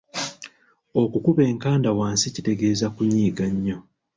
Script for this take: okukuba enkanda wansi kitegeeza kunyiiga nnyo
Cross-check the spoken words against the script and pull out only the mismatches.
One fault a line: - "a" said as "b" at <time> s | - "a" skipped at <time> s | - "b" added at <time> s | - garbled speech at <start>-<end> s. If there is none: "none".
none